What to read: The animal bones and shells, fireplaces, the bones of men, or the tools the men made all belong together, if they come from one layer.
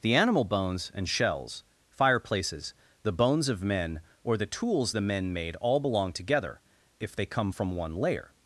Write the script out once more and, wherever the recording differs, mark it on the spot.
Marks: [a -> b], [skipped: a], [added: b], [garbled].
The animal bones and shells, fireplaces, the bones of men, or the tools the men made all belong together, if they come from one layer.